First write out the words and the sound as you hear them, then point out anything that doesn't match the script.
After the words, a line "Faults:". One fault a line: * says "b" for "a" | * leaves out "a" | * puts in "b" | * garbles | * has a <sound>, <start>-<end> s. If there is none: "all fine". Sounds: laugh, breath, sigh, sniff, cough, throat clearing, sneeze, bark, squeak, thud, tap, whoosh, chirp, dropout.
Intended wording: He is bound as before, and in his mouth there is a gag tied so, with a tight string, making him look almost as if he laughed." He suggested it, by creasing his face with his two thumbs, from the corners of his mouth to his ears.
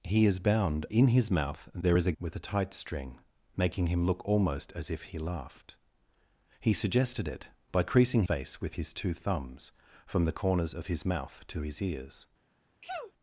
He is bound in his mouth there is a with a tight string, making him look almost as if he laughed." He suggested it, by creasing face with his two thumbs, from the corners of his mouth to his ears.
Faults:
* leaves out "as before and"
* leaves out "gag tied so"
* leaves out "his"
* has a sneeze, 12.8-13.1 s